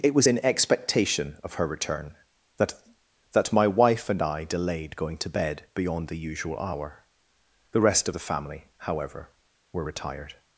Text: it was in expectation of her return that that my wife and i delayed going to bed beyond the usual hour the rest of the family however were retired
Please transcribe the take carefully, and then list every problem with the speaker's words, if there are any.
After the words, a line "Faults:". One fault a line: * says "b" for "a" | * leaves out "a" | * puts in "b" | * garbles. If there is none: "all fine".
it was in expectation of her return that that my wife and i delayed going to bed beyond the usual hour the rest of the family however were retired
Faults:
all fine